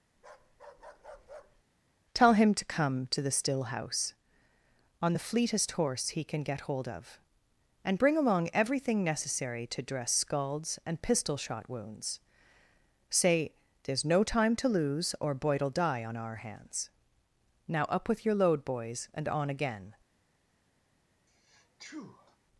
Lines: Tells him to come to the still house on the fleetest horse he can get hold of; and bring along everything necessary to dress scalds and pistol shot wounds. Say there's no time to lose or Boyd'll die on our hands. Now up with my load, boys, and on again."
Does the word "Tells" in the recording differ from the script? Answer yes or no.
yes